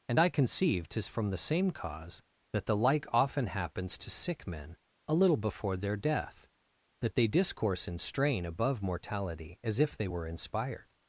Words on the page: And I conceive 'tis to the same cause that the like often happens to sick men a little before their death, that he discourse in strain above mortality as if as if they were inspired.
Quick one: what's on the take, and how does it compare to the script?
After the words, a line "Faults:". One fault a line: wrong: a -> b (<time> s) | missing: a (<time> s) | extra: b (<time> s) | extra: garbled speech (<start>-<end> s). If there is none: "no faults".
And I conceive 'tis from the same cause that the like often happens to sick men a little before their death, that they discourse in strain above mortality as if they were inspired.
Faults:
wrong: to -> from (1.1 s)
wrong: he -> they (7.1 s)
missing: as if (10.0 s)